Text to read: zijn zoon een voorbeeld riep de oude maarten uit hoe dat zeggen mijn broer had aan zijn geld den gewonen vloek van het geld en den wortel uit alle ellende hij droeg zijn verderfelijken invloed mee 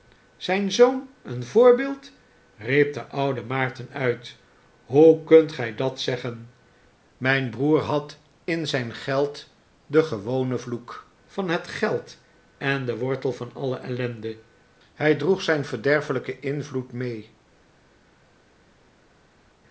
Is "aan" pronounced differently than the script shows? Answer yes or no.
yes